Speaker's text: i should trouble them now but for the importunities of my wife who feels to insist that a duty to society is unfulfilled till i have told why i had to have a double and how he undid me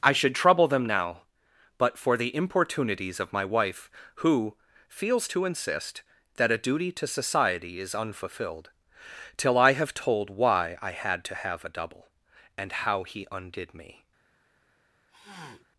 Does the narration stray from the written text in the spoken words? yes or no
no